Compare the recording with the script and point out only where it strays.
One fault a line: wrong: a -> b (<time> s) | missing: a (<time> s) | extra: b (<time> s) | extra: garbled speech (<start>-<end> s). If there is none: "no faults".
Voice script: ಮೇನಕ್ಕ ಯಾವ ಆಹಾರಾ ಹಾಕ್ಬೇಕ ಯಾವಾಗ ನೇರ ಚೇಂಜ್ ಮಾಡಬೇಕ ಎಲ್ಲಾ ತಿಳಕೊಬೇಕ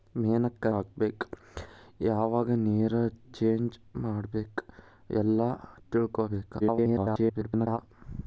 missing: ಯಾವ ಆಹಾರಾ (0.7 s)
extra: garbled speech (6.6-7.8 s)